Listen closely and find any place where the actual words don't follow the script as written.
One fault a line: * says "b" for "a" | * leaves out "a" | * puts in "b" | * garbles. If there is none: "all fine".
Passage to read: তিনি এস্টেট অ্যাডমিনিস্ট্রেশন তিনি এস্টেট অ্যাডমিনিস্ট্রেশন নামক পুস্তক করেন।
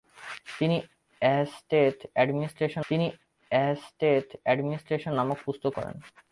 all fine